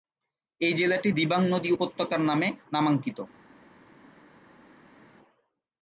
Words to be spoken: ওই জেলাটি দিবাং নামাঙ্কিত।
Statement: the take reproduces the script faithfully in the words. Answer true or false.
false